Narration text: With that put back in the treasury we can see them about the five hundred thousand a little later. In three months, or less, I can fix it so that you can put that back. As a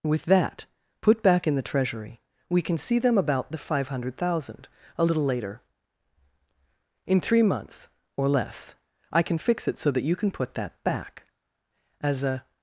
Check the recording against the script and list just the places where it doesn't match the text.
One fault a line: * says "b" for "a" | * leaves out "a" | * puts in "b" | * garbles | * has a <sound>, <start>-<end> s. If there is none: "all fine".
all fine